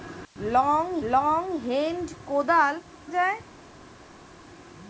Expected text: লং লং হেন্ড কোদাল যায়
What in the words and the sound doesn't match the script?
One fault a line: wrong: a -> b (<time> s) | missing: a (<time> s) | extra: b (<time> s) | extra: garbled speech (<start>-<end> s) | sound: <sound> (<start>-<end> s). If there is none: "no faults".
no faults